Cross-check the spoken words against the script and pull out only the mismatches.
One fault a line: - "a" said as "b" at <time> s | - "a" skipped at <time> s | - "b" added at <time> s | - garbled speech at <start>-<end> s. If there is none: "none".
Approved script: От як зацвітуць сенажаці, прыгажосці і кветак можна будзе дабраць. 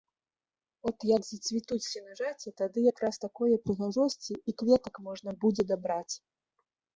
- "тады якраз такое" added at 2.6 s